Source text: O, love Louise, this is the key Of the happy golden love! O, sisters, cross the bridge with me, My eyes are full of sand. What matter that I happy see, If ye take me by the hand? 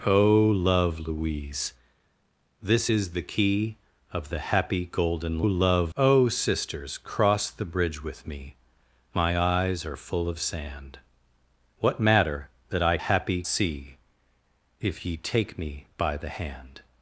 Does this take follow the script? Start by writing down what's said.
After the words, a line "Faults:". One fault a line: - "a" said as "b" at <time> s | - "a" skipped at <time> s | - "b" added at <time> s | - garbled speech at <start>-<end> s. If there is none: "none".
O, love Louise, this is the key Of the happy golden love! O, sisters, cross the bridge with me, My eyes are full of sand. What matter that I happy see, If ye take me by the hand?
Faults:
none